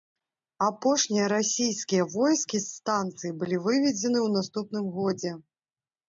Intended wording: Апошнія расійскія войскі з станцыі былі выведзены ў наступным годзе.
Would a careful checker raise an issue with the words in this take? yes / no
no